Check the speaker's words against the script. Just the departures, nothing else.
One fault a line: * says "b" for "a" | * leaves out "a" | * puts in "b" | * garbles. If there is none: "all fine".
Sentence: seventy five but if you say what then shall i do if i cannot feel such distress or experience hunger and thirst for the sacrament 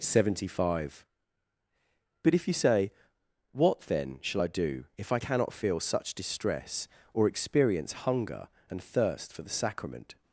all fine